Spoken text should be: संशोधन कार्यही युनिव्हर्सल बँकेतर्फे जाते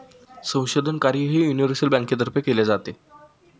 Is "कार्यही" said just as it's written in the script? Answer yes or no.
yes